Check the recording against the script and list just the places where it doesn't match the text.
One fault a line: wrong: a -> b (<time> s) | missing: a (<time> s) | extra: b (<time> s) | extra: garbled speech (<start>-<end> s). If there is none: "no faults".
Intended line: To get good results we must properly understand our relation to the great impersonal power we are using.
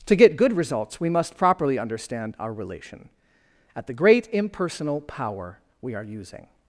wrong: to -> at (3.8 s)